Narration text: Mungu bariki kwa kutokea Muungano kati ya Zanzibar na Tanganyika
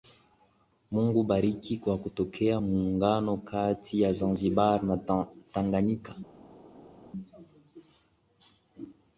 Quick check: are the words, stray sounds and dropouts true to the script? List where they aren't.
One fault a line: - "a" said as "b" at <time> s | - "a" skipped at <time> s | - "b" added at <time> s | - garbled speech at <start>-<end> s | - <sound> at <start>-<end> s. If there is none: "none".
none